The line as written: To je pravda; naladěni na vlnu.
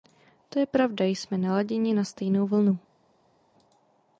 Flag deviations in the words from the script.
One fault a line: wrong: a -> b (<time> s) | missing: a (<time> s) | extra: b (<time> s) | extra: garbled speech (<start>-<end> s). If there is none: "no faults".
extra: jsme (1.1 s)
extra: stejnou (2.0 s)